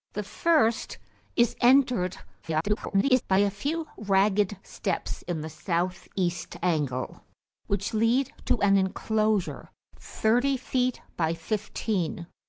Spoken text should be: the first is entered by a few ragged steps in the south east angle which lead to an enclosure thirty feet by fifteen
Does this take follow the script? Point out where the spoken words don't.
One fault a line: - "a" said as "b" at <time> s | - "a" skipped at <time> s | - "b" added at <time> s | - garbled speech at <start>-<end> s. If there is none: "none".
- garbled speech at 2.4-3.2 s